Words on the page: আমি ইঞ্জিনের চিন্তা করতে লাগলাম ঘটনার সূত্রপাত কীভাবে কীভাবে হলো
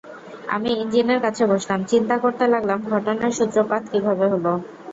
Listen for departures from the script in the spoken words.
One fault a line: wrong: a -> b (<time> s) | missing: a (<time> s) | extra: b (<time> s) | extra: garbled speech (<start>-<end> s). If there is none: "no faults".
extra: কাছে বসলাম (1.2 s)
missing: কীভাবে (4.2 s)